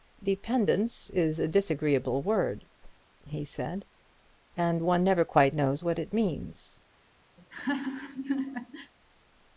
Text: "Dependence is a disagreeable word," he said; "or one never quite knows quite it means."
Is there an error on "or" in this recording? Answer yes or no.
yes